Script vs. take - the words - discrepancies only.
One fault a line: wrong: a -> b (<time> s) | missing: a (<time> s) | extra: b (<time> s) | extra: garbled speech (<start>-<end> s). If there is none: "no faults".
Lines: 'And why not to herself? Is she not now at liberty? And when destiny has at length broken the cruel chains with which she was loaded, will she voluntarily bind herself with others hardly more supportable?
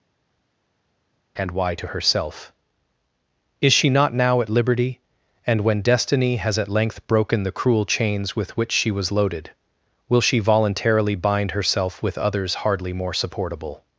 missing: not (1.7 s)